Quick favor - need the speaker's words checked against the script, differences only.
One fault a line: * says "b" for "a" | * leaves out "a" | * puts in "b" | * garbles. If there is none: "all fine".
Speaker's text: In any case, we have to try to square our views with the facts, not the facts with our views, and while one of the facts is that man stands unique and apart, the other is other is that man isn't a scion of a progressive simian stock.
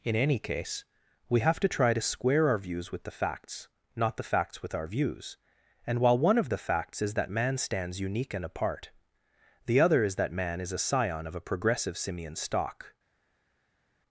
* leaves out "other is"
* says "is" for "isn't"